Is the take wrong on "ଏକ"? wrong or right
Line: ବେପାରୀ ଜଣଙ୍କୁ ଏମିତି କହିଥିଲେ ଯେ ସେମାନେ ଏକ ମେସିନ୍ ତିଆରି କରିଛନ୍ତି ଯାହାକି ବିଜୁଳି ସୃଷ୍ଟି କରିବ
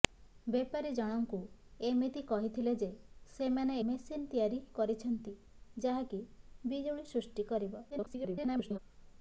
wrong